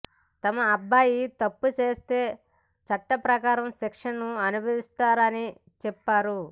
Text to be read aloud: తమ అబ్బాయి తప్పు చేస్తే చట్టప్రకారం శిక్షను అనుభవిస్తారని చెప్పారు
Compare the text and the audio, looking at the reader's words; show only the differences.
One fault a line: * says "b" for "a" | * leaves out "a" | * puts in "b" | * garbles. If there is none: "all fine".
all fine